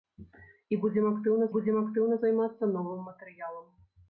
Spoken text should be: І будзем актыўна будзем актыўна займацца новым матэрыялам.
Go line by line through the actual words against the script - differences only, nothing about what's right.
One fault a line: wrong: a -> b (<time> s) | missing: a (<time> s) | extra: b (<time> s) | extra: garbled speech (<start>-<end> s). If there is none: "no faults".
no faults